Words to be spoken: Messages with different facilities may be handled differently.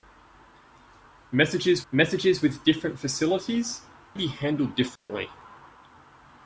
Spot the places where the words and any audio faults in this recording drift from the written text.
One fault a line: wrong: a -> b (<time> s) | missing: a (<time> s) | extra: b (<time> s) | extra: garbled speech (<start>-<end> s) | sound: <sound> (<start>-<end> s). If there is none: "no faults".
extra: messages (1.9 s)
missing: may (3.8 s)
sound: dropout (5.0-5.1 s)